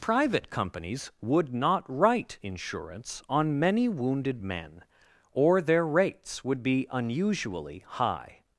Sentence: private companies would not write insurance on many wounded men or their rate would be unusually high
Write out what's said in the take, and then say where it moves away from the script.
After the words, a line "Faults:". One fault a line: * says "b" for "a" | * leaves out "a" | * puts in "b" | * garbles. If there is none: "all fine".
private companies would not write insurance on many wounded men or their rates would be unusually high
Faults:
* says "rates" for "rate"